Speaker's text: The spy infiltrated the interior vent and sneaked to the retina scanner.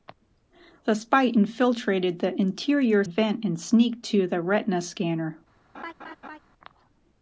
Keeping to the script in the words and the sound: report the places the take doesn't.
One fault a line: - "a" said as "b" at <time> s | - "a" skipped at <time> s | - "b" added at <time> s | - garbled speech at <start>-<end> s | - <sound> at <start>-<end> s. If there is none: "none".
- laugh at 5.7-6.4 s